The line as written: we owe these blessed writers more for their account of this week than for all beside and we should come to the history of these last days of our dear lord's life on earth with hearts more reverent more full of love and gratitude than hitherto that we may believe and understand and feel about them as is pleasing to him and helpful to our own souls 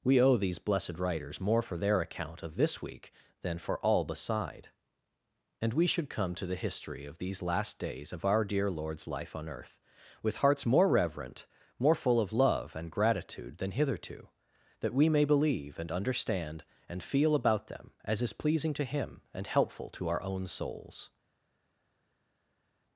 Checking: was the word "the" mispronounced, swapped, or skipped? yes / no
no